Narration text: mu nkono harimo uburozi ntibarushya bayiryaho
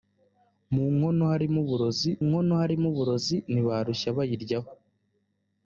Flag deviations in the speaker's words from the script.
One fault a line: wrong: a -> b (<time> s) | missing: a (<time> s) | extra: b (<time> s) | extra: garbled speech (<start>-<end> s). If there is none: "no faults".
extra: nkono harimo uburozi (2.2 s)